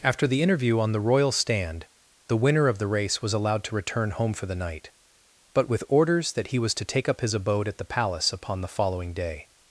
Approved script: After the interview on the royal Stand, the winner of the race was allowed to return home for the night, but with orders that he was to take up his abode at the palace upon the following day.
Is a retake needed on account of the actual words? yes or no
no